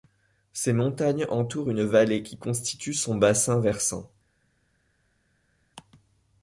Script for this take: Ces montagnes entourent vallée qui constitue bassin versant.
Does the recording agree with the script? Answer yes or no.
no